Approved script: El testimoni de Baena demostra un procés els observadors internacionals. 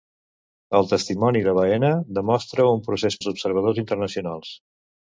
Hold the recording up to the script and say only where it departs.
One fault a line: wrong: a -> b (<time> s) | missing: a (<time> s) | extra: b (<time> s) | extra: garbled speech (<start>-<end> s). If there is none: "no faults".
no faults